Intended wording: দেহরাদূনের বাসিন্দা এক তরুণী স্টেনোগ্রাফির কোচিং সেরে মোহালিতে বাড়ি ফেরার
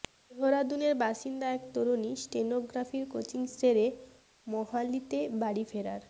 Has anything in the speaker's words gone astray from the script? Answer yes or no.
no